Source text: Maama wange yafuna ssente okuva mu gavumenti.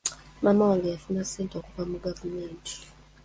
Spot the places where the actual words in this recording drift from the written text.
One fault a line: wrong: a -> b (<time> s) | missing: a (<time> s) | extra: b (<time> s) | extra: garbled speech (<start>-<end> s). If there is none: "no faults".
no faults